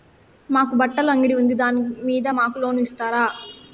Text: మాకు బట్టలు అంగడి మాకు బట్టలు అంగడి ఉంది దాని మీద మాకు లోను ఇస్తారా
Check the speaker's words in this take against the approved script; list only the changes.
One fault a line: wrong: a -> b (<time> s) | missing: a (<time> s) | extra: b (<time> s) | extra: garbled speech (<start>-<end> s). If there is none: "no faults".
missing: మాకు బట్టలు అంగడి (1.4 s)